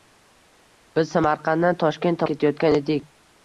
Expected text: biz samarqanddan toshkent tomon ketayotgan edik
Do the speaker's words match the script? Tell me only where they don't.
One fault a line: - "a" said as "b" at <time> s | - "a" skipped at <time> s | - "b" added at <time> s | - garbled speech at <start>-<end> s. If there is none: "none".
- "tomon" skipped at 2.2 s